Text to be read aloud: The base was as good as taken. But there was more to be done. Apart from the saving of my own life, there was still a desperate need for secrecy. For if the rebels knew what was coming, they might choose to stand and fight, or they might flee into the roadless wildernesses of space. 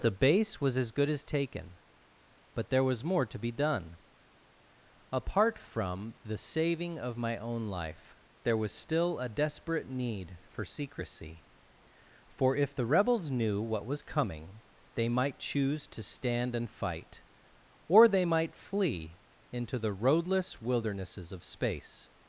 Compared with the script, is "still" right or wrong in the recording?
right